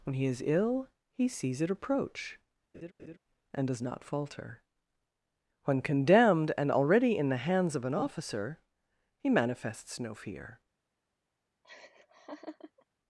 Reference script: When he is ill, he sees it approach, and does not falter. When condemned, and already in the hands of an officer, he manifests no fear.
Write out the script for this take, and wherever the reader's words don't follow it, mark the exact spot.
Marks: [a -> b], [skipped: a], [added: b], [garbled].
When he is ill, he sees it approach, and does not falter. When condemned, and already in the hands of an officer, he manifests no fear.